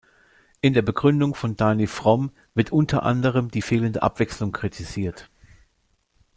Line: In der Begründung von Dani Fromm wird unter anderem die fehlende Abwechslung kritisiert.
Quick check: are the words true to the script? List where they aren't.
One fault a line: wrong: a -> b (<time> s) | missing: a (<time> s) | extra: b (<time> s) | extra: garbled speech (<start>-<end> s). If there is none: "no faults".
no faults